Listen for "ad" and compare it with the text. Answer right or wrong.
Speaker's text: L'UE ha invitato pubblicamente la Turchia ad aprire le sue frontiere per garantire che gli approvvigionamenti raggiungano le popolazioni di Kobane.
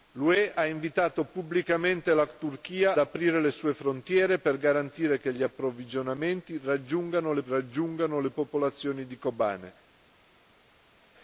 wrong